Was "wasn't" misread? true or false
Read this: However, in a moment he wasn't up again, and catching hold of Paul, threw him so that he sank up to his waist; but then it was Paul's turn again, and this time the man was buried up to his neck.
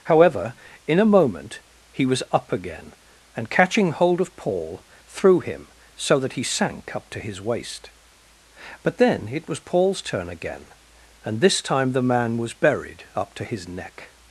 true